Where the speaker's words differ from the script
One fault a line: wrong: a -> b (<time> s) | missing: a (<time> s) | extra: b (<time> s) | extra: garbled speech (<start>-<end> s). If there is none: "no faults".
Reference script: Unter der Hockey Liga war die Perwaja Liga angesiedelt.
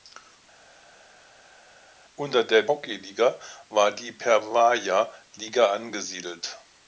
no faults